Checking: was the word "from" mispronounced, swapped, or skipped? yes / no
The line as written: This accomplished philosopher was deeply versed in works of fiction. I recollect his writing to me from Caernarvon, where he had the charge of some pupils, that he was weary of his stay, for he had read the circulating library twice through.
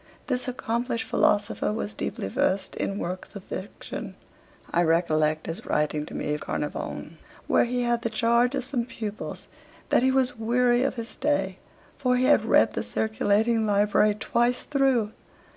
yes